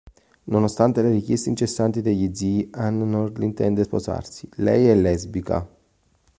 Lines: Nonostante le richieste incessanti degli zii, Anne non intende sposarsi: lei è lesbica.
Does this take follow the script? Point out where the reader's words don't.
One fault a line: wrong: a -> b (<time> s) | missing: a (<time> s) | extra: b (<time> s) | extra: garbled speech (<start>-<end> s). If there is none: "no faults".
no faults